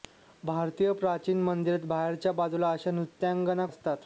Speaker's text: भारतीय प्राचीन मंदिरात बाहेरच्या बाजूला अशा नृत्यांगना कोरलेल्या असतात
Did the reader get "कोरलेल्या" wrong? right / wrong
wrong